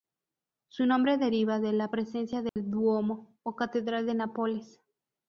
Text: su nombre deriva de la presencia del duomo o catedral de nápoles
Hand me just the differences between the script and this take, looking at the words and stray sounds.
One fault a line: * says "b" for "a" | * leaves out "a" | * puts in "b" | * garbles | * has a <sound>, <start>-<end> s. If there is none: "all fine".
* has a dropout, 2.5-2.6 s